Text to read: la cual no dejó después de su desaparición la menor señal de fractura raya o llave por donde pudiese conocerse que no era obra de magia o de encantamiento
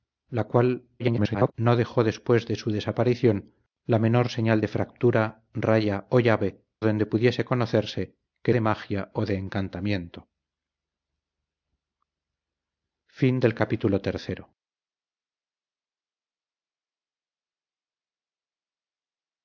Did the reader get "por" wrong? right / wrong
wrong